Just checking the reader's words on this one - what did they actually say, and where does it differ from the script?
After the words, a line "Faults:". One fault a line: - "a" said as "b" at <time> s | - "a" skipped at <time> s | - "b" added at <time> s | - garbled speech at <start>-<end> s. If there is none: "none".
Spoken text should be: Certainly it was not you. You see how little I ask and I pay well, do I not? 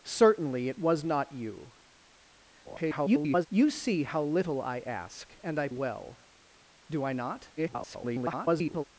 Certainly it was not you. [garbled] You see how little I ask and I well, do I not? [garbled]
Faults:
- garbled speech at 2.6-3.5 s
- "pay" skipped at 5.7 s
- garbled speech at 7.6-8.8 s